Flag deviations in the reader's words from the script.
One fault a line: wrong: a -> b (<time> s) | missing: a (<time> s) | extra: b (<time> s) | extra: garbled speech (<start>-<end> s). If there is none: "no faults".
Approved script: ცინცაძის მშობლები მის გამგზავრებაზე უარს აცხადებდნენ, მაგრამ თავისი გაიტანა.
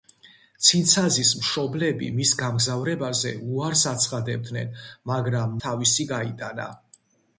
no faults